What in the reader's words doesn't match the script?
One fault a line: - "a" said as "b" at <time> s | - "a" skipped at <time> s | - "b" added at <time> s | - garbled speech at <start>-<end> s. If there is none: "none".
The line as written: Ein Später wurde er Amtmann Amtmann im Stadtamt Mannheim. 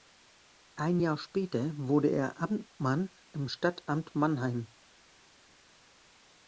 - "Jahr" added at 1.0 s
- "Amtmann" skipped at 3.1 s